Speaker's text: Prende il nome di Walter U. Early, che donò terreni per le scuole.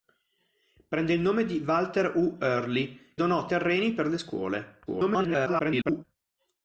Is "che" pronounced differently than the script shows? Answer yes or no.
yes